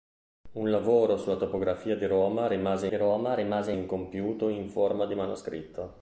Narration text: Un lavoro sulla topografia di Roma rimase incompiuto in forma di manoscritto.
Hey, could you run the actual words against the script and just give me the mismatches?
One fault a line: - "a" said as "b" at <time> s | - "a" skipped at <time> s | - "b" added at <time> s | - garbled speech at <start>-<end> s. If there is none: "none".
- "di Roma rimase" added at 2.9 s